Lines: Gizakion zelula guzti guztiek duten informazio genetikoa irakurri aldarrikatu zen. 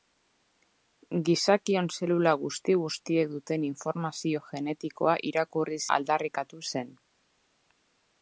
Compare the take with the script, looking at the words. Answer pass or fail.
pass